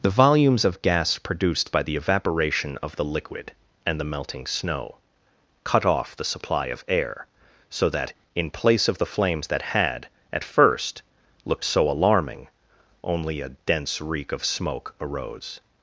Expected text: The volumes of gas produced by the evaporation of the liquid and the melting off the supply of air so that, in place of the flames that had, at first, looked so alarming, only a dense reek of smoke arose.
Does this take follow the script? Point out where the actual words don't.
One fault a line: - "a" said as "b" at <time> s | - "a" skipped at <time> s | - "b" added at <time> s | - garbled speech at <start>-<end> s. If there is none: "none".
- "snow cut" added at 4.5 s